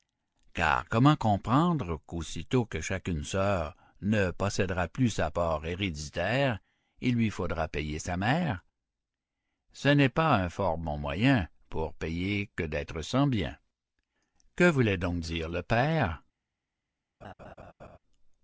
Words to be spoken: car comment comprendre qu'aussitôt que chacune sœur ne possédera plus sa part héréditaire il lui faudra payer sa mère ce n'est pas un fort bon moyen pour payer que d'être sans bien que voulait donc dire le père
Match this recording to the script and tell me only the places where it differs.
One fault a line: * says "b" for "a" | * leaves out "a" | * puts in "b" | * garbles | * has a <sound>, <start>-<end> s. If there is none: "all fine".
* has a laugh, 17.2-18.0 s